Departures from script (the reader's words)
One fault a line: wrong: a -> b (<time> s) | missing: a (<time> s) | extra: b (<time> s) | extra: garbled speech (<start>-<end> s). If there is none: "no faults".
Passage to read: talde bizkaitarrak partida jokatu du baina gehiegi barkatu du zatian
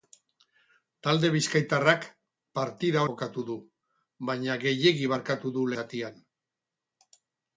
no faults